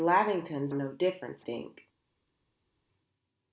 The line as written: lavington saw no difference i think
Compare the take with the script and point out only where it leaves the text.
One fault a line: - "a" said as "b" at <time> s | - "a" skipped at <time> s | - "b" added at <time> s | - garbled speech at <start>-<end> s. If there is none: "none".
- "saw" skipped at 0.7 s
- "i" skipped at 1.4 s